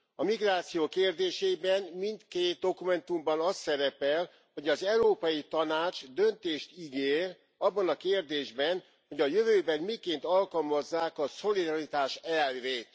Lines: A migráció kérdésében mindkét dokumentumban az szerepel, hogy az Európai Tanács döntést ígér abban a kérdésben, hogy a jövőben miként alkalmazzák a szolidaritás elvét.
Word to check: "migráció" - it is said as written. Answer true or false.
true